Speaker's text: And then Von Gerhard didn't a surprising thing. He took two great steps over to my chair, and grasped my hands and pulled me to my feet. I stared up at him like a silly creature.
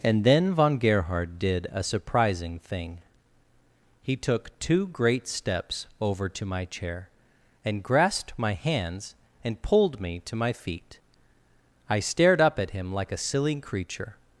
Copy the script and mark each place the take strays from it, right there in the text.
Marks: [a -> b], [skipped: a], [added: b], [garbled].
And then Von Gerhard [didn't -> did] a surprising thing. He took two great steps over to my chair, and grasped my hands and pulled me to my feet. I stared up at him like a silly creature.